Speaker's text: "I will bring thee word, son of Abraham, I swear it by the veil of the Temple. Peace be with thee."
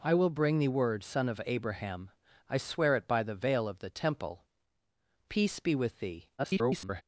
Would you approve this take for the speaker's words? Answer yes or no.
no